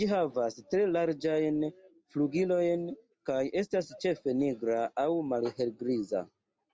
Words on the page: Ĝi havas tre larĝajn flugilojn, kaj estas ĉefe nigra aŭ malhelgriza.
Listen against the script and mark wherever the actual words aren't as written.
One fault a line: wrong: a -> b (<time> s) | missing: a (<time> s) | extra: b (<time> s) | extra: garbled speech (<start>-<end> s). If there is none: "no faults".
no faults